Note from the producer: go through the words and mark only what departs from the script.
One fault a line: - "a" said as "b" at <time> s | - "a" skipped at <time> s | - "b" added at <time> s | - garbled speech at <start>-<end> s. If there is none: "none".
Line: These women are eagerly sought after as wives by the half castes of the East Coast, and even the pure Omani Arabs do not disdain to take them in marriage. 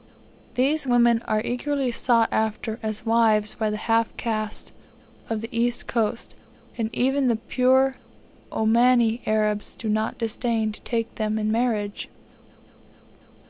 none